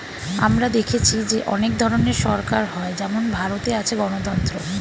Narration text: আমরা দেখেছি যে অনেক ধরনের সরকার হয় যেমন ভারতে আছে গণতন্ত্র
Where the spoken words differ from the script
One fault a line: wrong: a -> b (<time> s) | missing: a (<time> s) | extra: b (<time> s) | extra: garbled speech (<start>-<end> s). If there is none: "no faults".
no faults